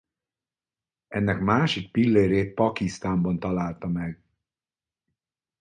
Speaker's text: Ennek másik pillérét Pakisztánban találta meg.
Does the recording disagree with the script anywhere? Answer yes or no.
no